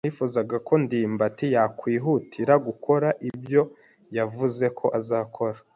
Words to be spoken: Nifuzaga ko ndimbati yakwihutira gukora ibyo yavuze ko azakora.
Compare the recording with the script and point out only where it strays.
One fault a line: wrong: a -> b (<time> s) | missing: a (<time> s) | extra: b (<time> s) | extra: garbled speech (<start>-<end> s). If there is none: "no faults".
no faults